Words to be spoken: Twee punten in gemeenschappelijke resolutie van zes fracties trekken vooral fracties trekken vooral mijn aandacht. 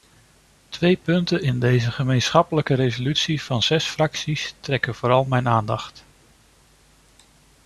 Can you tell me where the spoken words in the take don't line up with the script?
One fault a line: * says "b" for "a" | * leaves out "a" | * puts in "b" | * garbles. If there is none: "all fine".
* puts in "deze"
* leaves out "fracties trekken vooral"